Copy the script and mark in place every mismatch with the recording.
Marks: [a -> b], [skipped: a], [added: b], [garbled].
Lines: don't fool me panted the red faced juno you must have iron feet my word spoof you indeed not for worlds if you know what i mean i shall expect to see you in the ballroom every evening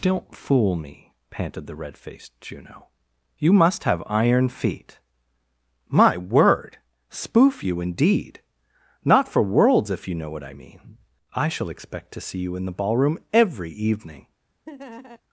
don't fool me panted the red faced juno you must have iron feet my word spoof you indeed not for worlds if you know what i mean i shall expect to see you in the ballroom every evening